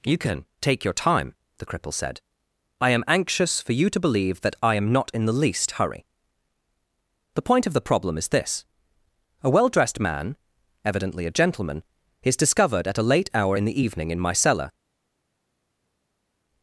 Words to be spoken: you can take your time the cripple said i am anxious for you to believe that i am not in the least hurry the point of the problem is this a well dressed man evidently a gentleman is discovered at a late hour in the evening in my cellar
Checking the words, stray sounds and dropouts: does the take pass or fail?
pass